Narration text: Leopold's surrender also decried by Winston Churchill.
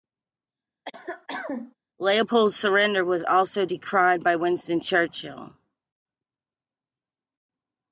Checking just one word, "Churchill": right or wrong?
right